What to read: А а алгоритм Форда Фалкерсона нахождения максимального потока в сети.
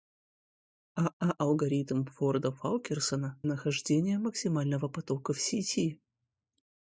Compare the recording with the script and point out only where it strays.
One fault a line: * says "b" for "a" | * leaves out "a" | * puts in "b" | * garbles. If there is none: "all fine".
all fine